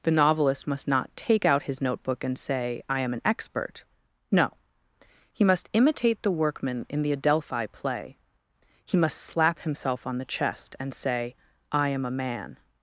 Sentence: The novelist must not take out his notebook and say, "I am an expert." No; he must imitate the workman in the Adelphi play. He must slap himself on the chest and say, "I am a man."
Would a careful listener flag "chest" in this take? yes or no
no